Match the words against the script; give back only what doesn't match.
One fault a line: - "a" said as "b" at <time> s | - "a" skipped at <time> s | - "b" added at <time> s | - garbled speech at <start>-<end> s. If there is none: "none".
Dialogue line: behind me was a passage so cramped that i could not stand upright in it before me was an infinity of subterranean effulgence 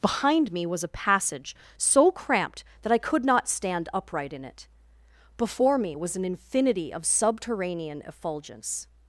none